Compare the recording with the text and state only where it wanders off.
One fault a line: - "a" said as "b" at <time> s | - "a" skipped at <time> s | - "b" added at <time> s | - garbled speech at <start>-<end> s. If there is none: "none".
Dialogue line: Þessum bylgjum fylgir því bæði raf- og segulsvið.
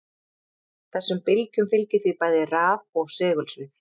none